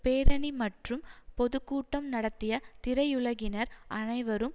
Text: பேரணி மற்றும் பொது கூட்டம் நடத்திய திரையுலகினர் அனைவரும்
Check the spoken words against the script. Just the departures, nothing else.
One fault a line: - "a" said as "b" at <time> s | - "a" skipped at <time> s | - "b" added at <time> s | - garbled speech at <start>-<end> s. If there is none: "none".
none